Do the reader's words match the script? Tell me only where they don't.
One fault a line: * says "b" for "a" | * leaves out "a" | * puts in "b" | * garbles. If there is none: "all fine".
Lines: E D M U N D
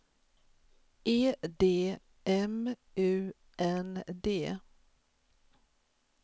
all fine